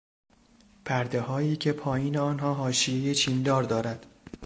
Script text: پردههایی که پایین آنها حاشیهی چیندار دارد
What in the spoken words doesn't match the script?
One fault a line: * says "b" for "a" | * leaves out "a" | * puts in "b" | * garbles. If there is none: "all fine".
all fine